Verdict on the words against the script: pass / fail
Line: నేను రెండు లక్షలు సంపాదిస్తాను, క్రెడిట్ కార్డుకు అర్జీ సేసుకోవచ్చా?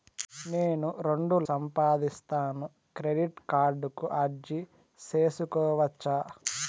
fail